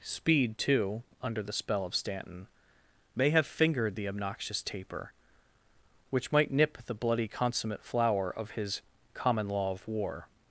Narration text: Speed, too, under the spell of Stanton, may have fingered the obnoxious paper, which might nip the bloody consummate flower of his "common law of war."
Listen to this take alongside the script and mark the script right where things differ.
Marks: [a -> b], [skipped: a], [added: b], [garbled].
Speed, too, under the spell of Stanton, may have fingered the obnoxious [paper, -> taper] which might nip the bloody consummate flower of his "common law of war."